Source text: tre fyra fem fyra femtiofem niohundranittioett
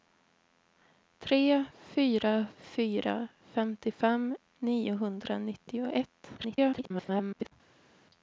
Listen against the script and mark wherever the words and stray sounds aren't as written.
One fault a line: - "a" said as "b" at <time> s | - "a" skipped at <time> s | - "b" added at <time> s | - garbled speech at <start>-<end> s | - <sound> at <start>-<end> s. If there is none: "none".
- "fem" skipped at 2.5 s
- garbled speech at 6.4-7.5 s